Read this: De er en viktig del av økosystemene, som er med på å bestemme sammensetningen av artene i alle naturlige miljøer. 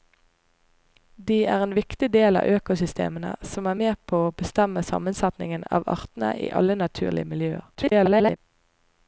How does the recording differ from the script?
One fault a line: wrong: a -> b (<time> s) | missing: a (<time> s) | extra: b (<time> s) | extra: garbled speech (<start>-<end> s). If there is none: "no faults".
extra: garbled speech (7.7-8.4 s)